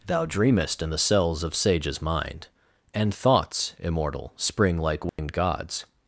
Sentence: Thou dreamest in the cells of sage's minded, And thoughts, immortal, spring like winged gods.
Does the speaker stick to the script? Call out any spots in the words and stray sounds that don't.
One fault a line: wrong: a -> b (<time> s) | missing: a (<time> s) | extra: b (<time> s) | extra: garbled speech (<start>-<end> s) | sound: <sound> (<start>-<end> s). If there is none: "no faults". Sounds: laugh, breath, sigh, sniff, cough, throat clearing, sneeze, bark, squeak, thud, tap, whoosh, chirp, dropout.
wrong: minded -> mind (2.0 s)
sound: dropout (5.1-5.2 s)